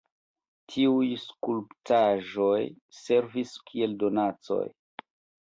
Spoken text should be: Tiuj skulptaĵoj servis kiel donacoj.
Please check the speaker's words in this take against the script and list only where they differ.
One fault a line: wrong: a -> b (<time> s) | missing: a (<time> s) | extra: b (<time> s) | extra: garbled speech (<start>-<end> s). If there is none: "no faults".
no faults